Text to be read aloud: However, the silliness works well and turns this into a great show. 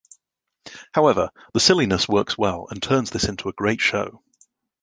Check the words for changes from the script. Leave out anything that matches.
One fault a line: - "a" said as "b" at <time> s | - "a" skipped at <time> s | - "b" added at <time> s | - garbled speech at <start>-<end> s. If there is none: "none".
none